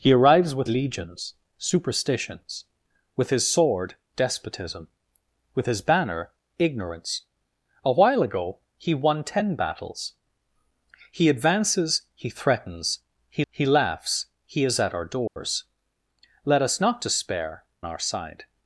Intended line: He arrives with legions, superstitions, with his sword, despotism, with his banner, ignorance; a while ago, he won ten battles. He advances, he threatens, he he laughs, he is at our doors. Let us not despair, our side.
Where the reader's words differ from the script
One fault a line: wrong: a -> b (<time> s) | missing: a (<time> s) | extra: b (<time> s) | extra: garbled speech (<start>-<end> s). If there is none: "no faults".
no faults